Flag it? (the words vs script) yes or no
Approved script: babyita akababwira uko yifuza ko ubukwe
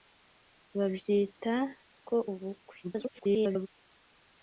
yes